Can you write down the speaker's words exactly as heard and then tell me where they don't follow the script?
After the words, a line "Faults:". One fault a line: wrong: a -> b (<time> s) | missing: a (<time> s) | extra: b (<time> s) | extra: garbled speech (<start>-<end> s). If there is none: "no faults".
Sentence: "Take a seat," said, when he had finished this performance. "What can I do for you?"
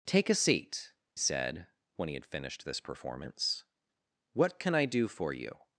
"Take a seat," said, when he had finished this performance. "What can I do for you?"
Faults:
no faults